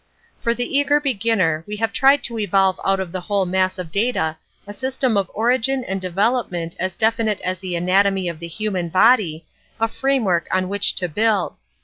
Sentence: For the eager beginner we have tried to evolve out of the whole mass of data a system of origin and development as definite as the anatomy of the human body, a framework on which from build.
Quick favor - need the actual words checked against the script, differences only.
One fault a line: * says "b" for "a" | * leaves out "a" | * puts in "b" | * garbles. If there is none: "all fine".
* says "to" for "from"